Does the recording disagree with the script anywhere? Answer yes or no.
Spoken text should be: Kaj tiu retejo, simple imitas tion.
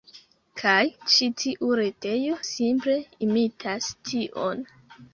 yes